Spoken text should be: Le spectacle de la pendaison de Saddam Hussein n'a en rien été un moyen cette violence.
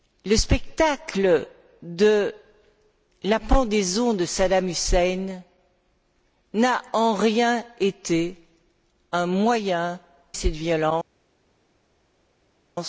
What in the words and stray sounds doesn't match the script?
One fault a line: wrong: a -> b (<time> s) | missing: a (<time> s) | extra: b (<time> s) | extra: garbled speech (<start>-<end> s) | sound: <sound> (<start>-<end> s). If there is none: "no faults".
no faults